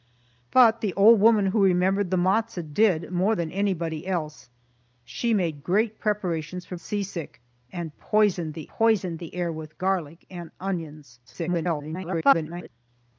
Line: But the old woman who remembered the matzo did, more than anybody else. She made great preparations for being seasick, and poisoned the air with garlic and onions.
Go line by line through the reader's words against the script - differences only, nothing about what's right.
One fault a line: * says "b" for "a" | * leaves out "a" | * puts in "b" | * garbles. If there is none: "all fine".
* leaves out "being"
* puts in "poisoned the"
* garbles